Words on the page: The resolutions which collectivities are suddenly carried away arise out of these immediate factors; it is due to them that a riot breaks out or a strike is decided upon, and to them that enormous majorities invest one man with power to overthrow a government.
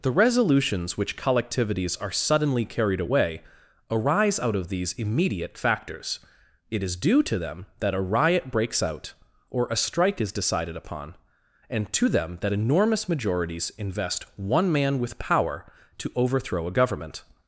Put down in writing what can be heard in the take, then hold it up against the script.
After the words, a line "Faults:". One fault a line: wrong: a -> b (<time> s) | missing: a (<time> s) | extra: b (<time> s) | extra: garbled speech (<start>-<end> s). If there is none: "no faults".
The resolutions which collectivities are suddenly carried away arise out of these immediate factors; it is due to them that a riot breaks out or a strike is decided upon, and to them that enormous majorities invest one man with power to overthrow a government.
Faults:
no faults